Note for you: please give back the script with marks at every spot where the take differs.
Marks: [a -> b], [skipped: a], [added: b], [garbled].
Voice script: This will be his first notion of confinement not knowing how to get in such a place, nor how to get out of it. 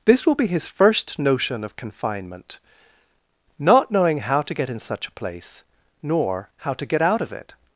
This will be his first notion of confinement not knowing how to get in such a place, nor how to get out of it.